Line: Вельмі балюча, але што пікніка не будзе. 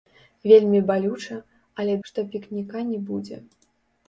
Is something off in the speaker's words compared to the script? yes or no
no